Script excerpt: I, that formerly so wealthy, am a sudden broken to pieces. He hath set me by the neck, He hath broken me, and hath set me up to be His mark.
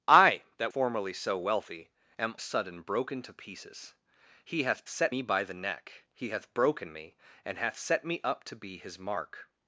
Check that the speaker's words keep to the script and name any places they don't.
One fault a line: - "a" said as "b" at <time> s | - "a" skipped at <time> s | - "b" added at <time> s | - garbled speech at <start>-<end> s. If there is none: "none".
none